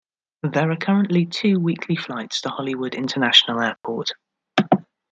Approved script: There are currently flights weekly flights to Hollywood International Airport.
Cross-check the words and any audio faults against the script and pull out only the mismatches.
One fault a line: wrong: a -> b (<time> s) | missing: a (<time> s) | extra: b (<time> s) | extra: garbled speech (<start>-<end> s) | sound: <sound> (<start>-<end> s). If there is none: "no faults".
wrong: flights -> two (1.3 s)
sound: dropout (3.8-3.8 s)